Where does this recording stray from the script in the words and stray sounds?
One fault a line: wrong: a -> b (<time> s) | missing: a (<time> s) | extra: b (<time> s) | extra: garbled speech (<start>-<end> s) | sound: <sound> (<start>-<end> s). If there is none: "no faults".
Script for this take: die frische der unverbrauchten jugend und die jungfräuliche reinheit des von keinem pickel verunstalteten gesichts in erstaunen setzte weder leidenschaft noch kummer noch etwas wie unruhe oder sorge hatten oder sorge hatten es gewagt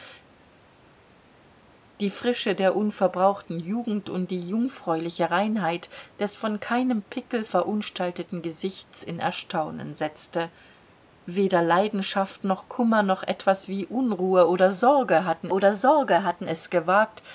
no faults